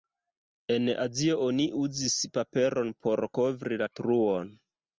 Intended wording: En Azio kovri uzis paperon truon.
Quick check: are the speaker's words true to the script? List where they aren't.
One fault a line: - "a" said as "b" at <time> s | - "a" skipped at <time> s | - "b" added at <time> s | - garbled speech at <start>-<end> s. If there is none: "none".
- "kovri" said as "oni" at 1.5 s
- "por kovri la" added at 3.0 s